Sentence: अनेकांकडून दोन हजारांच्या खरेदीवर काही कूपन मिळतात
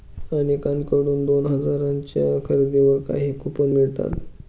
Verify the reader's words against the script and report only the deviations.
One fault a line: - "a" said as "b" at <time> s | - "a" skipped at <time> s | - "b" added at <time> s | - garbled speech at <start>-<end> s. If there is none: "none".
none